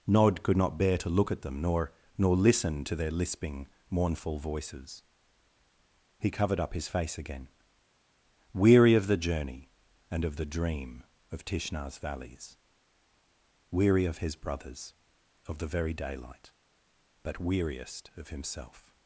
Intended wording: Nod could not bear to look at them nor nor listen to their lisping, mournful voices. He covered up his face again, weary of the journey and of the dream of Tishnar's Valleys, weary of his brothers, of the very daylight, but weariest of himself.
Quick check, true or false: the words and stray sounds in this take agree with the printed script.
true